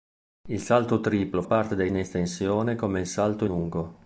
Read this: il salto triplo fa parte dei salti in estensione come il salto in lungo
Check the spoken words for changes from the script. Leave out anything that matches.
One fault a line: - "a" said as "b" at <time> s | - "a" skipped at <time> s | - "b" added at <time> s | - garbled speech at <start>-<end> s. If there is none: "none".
- "fa" skipped at 1.4 s
- "salti" skipped at 1.9 s
- "in" skipped at 3.4 s